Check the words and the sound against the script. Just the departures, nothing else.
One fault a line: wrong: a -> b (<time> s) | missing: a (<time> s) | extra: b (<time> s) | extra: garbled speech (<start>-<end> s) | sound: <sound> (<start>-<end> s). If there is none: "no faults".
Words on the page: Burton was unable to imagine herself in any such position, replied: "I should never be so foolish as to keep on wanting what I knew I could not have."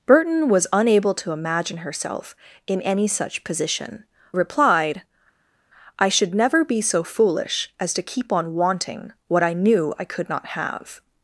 no faults